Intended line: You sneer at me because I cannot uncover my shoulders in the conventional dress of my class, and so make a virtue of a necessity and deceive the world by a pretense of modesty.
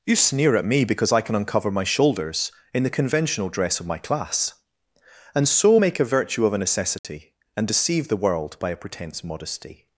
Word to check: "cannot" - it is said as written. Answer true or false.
false